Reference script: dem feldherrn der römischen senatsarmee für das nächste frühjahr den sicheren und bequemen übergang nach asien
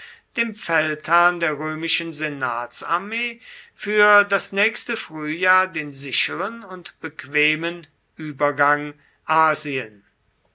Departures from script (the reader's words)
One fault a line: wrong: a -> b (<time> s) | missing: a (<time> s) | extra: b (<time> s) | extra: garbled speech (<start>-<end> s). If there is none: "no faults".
missing: nach (8.9 s)